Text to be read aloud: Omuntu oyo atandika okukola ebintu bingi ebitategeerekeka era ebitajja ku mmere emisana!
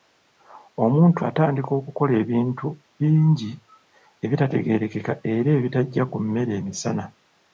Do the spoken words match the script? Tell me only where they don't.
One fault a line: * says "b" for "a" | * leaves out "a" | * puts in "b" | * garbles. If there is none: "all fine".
* leaves out "oyo"